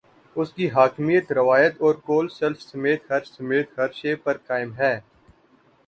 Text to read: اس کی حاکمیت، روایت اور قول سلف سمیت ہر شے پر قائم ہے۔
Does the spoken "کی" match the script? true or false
true